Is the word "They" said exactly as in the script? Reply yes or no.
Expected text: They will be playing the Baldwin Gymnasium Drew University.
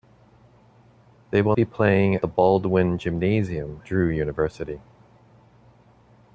yes